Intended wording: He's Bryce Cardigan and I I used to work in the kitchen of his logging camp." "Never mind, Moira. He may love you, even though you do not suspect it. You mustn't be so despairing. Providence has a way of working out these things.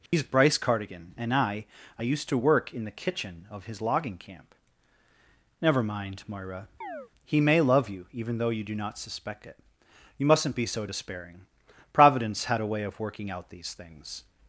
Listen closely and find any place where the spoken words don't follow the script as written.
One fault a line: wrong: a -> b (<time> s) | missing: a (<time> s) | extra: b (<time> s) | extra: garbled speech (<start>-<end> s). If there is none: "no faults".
wrong: has -> had (12.5 s)